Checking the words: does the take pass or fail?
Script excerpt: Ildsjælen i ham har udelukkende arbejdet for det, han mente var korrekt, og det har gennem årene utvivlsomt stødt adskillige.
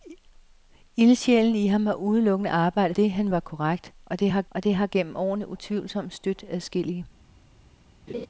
fail